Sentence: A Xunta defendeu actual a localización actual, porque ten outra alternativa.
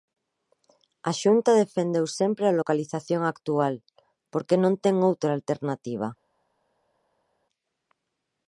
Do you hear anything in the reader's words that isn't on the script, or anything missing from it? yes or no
yes